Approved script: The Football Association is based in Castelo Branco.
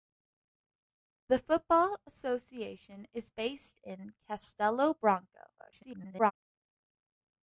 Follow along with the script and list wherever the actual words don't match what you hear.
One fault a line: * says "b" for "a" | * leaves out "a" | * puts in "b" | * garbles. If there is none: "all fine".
* garbles